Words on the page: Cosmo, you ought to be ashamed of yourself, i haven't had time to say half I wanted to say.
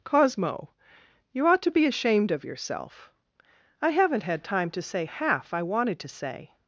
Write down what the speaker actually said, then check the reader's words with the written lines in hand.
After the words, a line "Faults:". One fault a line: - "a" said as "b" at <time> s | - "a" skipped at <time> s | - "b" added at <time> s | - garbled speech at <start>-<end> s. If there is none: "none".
Cosmo, you ought to be ashamed of yourself, i haven't had time to say half I wanted to say.
Faults:
none